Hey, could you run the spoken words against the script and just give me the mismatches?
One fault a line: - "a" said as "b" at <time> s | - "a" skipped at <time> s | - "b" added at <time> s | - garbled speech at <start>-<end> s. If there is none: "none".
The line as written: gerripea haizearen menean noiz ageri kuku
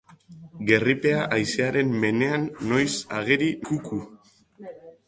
none